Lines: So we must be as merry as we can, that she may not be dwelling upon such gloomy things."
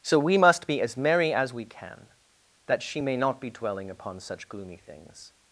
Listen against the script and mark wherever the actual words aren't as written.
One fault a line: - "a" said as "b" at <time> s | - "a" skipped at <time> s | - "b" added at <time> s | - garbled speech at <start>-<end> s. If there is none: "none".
none